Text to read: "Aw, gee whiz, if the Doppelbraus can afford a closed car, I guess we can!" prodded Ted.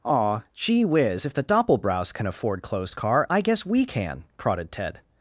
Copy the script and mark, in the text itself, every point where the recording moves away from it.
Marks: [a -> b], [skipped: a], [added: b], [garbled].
"Aw, gee whiz, if the Doppelbraus can afford [skipped: a] closed car, I guess we can!" prodded Ted.